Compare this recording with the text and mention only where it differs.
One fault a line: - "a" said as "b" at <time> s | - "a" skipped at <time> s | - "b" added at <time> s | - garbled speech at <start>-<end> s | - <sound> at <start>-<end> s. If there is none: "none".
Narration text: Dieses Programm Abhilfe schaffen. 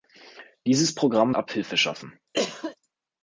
- cough at 2.3-2.8 s